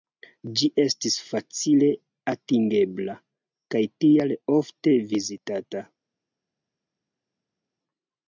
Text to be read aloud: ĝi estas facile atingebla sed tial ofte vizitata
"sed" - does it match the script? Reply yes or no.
no